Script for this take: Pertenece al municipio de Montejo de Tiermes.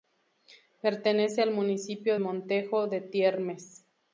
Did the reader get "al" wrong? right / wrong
right